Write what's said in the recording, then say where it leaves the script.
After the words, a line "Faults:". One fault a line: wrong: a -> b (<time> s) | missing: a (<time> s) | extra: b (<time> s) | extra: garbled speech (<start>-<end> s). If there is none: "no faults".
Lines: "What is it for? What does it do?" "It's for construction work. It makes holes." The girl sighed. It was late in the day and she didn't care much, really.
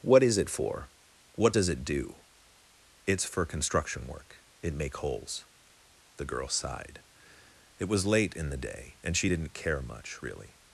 "What is it for? What does it do?" "It's for construction work. It make holes." The girl sighed. It was late in the day and she didn't care much, really.
Faults:
wrong: makes -> make (4.7 s)